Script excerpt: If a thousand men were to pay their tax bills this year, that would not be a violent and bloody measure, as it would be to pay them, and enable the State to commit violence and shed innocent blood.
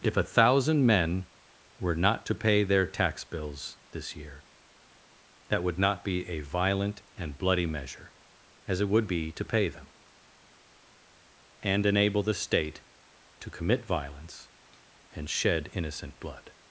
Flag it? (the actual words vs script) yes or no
yes